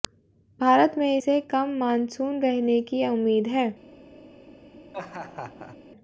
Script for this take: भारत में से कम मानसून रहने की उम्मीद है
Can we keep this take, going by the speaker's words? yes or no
yes